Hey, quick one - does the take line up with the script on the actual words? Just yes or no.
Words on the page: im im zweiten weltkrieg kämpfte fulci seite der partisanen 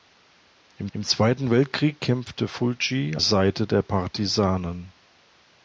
yes